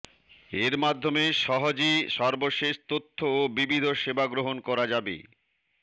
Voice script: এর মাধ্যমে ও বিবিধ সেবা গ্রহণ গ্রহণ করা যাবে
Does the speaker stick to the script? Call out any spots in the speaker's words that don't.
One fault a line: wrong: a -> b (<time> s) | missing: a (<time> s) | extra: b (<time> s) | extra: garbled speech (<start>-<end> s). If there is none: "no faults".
extra: সহজে সর্বশেষ তথ্য (1.4 s)
missing: গ্রহণ (4.6 s)